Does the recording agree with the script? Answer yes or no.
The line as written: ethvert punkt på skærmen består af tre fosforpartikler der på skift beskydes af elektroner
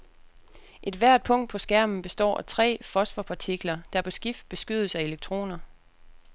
yes